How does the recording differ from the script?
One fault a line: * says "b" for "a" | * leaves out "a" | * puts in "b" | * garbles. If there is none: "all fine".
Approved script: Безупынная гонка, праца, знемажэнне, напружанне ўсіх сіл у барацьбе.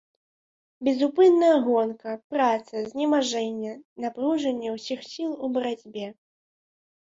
all fine